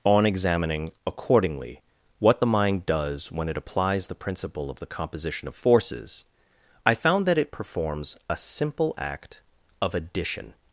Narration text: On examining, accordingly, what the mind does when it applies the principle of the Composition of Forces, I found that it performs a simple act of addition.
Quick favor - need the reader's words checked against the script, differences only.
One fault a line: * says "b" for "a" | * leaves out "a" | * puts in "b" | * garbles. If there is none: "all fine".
all fine